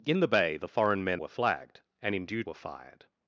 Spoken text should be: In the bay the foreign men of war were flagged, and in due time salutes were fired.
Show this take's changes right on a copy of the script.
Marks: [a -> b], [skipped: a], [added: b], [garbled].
In the bay the foreign men [skipped: of war] were flagged, and in due [skipped: time salutes] were fired.